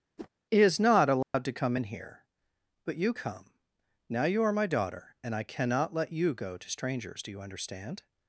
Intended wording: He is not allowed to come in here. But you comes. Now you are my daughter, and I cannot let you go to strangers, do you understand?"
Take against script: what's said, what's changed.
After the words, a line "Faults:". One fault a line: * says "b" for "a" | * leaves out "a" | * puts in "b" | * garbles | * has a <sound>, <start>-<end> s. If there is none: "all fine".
He is not allowed to come in here. But you come. Now you are my daughter, and I cannot let you go to strangers, do you understand?"
Faults:
* has a whoosh, 0.2-0.3 s
* has a dropout, 1.2-1.3 s
* says "come" for "comes"